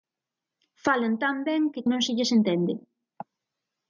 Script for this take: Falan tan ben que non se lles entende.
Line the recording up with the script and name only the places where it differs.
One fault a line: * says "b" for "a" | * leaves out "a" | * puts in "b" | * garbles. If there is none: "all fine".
all fine